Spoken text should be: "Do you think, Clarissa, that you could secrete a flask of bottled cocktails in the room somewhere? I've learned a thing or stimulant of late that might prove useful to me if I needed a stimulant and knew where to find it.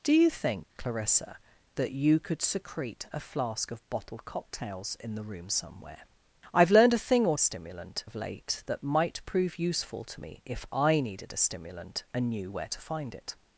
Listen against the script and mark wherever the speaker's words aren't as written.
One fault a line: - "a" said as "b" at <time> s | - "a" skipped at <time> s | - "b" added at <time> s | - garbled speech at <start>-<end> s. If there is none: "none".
none